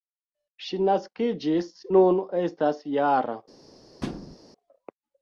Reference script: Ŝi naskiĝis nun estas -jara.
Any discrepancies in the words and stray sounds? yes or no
yes